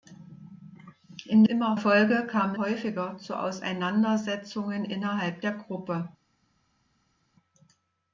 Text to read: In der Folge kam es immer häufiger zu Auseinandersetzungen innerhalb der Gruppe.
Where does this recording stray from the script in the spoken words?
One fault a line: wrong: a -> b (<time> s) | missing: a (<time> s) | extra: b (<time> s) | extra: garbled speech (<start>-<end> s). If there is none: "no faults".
wrong: der -> immer (1.4 s)
missing: es immer (2.5 s)